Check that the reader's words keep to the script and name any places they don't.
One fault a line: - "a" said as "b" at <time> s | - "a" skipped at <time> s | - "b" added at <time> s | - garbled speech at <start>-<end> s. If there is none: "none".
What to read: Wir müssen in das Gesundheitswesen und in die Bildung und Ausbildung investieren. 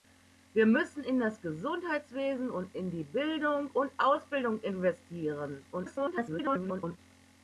- garbled speech at 5.7-7.0 s